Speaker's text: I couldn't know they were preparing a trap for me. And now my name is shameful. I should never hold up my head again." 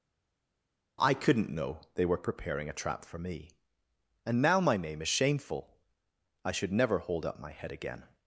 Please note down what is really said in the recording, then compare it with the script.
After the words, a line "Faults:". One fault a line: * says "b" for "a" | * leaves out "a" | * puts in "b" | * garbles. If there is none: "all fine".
I couldn't know they were preparing a trap for me. And now my name is shameful. I should never hold up my head again."
Faults:
all fine